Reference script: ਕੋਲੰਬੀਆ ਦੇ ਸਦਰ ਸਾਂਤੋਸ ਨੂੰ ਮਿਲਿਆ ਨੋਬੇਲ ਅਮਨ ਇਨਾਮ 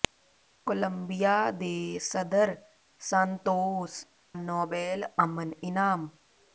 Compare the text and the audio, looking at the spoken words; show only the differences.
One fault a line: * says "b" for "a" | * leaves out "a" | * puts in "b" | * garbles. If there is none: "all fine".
* leaves out "ਨੂੰ ਮਿਲਿਆ"